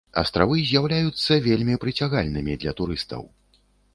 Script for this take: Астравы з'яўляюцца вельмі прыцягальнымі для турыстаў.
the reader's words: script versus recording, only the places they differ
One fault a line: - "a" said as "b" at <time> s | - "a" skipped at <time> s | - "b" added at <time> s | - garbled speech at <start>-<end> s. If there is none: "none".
none